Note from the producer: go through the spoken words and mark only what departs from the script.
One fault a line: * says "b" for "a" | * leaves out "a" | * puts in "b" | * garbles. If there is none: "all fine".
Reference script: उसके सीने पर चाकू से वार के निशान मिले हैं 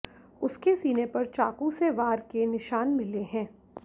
all fine